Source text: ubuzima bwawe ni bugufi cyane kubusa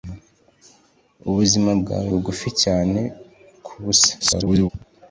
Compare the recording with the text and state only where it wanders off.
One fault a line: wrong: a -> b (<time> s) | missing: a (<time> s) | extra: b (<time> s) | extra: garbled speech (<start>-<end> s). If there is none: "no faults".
missing: ni (2.1 s)
extra: garbled speech (4.2-4.7 s)